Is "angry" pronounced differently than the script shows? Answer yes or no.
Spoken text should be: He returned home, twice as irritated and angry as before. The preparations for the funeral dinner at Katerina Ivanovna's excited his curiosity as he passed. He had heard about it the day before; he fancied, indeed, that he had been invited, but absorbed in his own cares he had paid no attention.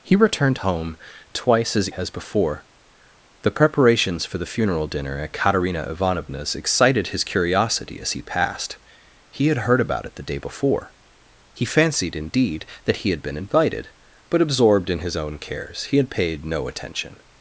yes